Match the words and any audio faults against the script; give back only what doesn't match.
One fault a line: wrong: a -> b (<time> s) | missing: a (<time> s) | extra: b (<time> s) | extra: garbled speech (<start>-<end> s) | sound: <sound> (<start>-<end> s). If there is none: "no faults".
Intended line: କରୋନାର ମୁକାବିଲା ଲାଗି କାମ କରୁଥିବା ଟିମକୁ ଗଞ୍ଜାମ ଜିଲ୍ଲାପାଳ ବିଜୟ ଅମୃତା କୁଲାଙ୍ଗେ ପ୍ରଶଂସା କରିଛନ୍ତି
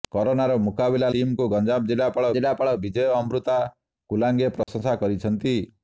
missing: ଲାଗି କାମ କରୁଥିବା (1.1 s)
extra: ଜିଲ୍ଲାପାଳ (2.4 s)
sound: dropout (4.6-4.7 s)